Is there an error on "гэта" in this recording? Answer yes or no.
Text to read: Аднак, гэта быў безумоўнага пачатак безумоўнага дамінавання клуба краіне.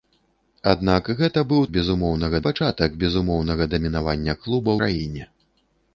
no